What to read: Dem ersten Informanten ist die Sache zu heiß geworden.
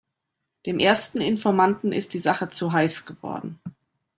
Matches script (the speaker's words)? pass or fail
pass